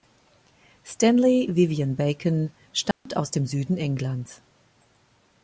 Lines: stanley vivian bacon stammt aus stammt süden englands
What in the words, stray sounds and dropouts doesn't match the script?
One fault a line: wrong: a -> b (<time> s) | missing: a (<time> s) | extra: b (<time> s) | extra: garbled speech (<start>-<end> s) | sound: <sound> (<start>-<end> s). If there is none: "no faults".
sound: dropout (2.9-3.1 s)
wrong: stammt -> dem (3.3 s)